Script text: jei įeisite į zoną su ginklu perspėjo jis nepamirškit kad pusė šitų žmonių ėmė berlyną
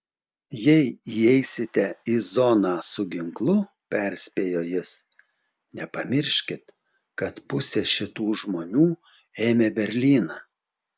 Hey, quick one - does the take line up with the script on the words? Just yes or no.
yes